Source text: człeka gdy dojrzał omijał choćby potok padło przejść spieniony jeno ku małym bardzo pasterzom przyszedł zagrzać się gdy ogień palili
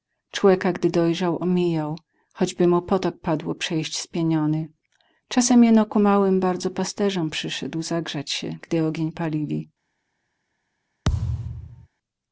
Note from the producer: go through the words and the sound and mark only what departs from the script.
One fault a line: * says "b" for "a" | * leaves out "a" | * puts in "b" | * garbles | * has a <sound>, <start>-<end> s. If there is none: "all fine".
* puts in "mu"
* puts in "czasem"
* has a thud, 11.0-11.9 s